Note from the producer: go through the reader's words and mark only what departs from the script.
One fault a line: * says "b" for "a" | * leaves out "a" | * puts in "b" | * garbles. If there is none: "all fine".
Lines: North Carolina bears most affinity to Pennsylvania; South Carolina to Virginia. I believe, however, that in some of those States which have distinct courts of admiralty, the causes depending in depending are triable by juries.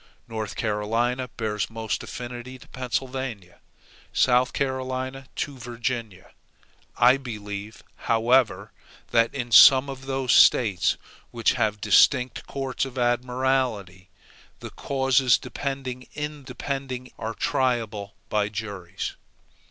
all fine